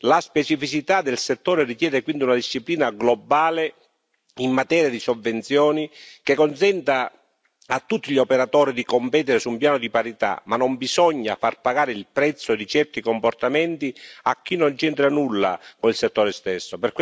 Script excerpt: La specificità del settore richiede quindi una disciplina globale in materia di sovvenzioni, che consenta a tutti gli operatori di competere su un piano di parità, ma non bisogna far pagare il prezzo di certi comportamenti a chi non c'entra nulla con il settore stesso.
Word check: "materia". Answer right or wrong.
right